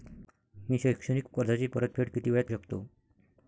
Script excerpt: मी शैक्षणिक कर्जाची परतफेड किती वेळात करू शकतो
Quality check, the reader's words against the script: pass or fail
fail